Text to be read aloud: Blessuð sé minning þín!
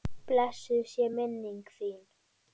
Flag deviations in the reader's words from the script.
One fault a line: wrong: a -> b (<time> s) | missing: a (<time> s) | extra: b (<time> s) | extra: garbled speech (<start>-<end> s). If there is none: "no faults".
no faults